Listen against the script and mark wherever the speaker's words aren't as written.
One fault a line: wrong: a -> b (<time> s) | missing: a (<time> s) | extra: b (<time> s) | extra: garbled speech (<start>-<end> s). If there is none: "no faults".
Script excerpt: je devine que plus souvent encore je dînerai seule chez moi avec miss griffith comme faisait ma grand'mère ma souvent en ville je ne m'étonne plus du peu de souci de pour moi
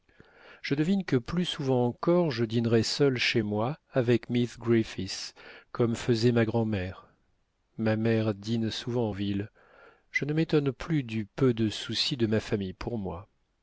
extra: mère dîne (8.0 s)
extra: ma famille (12.3 s)